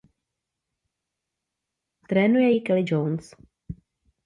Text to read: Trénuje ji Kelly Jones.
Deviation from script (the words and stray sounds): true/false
false